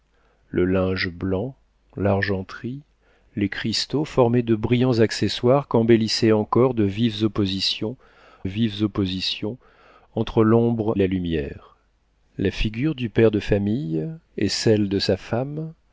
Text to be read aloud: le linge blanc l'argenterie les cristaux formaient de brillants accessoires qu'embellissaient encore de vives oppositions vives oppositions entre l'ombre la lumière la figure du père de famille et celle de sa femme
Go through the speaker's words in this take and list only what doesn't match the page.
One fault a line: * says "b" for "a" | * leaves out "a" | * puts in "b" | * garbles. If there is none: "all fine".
all fine